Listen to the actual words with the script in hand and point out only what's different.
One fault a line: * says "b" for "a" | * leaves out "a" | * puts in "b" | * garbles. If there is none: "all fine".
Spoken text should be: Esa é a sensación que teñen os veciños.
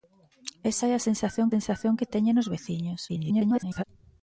* puts in "sensación"
* garbles